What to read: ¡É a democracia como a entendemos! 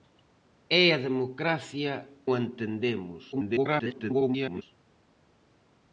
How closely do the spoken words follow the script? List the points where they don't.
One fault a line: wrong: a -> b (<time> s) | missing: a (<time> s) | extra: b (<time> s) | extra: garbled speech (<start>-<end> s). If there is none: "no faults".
missing: como (1.9 s)
extra: garbled speech (3.3-4.6 s)